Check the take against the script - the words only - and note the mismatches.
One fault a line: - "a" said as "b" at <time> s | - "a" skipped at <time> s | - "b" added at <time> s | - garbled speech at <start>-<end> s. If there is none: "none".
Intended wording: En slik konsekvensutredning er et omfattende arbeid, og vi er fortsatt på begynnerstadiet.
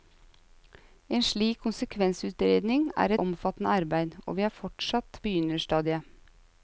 - "et" skipped at 3.1 s
- "på" skipped at 5.2 s